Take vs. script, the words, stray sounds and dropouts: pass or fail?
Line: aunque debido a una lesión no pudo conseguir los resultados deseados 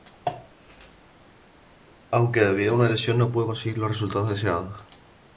pass